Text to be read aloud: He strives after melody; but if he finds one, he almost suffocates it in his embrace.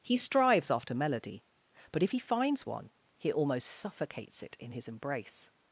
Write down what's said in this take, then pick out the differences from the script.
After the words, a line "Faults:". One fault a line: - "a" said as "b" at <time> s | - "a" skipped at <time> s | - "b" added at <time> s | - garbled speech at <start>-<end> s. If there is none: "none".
He strives after melody; but if he finds one, he almost suffocates it in his embrace.
Faults:
none